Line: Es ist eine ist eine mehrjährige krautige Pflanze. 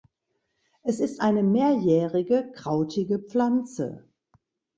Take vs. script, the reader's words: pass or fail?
fail